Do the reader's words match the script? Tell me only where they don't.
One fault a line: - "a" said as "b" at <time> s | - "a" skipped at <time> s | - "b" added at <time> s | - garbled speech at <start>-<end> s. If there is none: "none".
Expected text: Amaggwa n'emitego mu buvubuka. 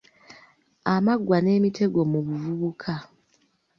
none